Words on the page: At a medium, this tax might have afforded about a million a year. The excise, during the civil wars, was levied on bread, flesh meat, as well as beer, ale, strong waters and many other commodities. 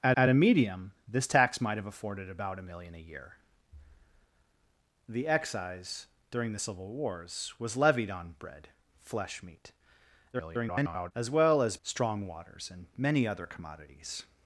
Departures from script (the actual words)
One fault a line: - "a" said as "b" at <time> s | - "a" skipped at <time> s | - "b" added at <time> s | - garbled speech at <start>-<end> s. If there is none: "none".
- "at" added at 0.2 s
- garbled speech at 10.3-11.1 s
- "beer ale" skipped at 11.8 s